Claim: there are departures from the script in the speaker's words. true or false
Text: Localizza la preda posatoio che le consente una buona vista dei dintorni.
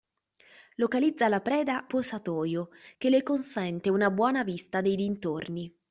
false